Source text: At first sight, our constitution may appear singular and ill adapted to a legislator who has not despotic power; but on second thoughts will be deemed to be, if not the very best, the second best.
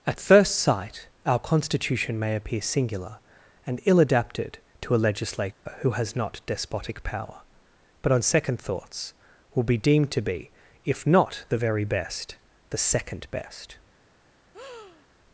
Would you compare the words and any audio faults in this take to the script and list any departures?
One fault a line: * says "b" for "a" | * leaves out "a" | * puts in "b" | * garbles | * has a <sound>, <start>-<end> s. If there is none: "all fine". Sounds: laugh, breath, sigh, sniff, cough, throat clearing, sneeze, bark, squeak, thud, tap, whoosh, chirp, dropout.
* has a dropout, 5.5-5.7 s
* has a breath, 14.5-15.1 s